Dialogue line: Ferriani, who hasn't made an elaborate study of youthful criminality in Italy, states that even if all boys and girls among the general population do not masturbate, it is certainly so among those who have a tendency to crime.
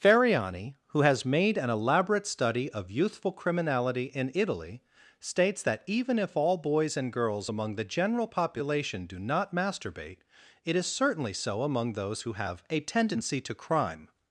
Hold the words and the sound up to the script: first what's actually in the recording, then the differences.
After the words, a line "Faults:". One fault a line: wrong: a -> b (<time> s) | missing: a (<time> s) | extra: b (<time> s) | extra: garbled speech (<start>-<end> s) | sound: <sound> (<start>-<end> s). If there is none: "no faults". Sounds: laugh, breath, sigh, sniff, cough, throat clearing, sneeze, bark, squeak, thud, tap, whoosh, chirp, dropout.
Ferriani, who has made an elaborate study of youthful criminality in Italy, states that even if all boys and girls among the general population do not masturbate, it is certainly so among those who have a tendency to crime.
Faults:
wrong: hasn't -> has (1.0 s)